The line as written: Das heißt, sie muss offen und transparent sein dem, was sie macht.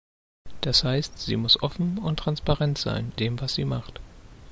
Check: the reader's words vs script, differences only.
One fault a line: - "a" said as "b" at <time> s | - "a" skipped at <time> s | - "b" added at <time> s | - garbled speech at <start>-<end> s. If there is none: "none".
none